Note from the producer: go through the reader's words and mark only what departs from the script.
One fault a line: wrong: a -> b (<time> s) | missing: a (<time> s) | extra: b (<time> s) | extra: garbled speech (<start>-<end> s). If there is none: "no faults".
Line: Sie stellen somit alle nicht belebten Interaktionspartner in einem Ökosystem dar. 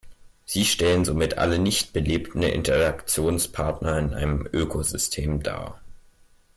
no faults